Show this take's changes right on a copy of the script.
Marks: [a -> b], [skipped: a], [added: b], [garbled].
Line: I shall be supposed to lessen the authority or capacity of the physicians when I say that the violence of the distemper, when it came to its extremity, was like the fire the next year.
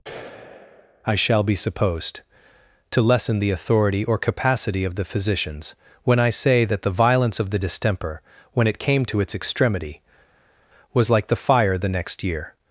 I shall be supposed to lessen the authority or capacity of the physicians when I say that the violence of the distemper, when it came to its extremity, was like the fire the next year.